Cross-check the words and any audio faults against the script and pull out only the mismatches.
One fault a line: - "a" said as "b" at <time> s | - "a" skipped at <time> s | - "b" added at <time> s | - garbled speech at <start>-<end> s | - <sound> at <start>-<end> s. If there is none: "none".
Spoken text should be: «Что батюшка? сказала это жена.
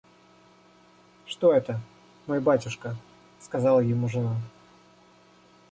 - "это мой" added at 1.5 s
- "это" said as "ему" at 3.8 s